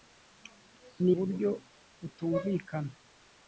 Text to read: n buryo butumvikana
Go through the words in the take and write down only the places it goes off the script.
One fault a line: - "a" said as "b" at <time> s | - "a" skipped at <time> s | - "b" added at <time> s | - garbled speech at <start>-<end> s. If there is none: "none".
none